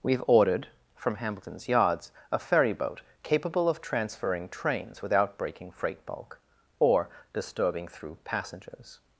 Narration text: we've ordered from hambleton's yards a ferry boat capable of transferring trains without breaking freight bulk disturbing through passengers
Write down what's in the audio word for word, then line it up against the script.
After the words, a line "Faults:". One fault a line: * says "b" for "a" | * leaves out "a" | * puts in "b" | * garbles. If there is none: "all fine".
we've ordered from hambleton's yards a ferry boat capable of transferring trains without breaking freight bulk or disturbing through passengers
Faults:
* puts in "or"